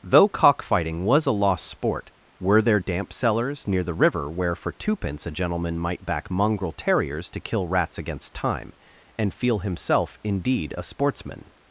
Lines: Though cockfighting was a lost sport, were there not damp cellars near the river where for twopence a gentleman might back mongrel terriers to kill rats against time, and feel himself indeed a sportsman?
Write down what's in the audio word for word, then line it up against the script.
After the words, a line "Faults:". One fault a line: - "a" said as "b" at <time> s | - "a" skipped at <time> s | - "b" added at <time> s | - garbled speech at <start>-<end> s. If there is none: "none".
Though cockfighting was a lost sport, were there damp cellars near the river where for twopence a gentleman might back mongrel terriers to kill rats against time, and feel himself indeed a sportsman?
Faults:
- "not" skipped at 2.8 s